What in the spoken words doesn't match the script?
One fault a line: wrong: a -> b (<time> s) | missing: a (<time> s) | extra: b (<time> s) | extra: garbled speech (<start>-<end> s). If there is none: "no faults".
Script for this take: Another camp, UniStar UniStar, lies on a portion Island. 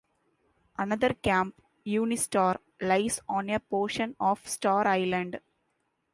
missing: UniStar (2.6 s)
extra: of Star (4.2 s)